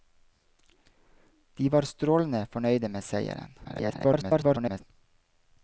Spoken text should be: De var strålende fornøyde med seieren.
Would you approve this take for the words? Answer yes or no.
no